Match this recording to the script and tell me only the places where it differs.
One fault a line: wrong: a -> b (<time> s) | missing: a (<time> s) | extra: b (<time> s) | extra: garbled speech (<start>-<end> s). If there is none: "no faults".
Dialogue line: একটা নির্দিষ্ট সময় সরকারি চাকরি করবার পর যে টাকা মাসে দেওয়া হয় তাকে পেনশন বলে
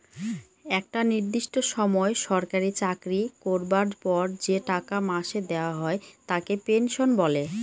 no faults